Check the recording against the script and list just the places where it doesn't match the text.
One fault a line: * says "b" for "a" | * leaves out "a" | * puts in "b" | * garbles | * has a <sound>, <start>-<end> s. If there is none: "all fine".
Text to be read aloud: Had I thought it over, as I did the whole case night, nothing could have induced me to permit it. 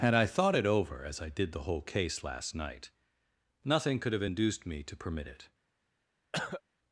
* puts in "last"
* has a cough, 6.3-6.6 s